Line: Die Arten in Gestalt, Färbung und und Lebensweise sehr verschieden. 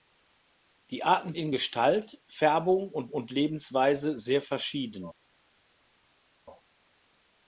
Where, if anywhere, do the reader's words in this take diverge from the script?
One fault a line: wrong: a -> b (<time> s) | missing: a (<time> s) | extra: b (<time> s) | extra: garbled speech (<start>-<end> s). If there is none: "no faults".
no faults